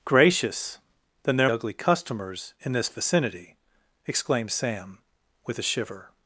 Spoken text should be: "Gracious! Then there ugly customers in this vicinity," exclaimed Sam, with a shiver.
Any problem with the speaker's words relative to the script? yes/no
no